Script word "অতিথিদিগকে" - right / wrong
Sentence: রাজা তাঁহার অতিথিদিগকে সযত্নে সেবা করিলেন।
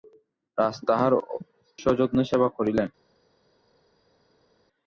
wrong